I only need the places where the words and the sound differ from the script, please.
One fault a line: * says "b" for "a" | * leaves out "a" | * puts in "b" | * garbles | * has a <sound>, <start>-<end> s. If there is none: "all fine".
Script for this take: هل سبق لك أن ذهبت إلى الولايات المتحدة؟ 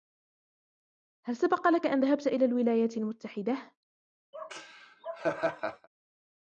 * has a laugh, 4.3-5.9 s